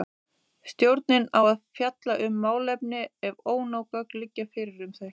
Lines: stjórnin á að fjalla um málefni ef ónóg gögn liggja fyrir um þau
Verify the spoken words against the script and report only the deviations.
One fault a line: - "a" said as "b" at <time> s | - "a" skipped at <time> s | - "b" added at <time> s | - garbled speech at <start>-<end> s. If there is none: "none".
none